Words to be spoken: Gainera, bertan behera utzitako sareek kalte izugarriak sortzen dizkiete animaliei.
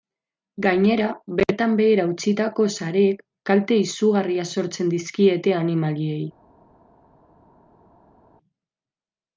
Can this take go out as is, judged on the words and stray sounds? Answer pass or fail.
pass